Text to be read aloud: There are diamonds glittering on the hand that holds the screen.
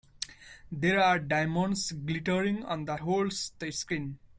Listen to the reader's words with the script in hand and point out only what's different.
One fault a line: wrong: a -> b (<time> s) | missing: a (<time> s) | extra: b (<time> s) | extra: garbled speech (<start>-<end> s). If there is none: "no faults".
missing: hand that (3.0 s)